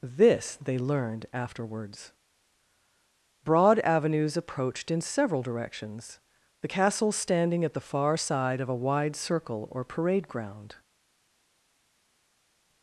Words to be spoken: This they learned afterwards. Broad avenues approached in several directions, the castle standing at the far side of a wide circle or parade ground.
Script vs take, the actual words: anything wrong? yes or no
no